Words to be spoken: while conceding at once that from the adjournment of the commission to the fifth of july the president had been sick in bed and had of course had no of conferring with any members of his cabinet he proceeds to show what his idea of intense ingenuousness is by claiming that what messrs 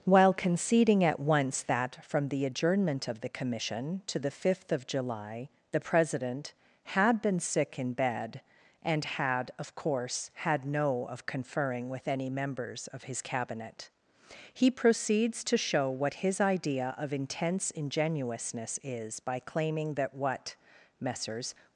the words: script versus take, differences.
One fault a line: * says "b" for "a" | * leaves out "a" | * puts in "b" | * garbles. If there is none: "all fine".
all fine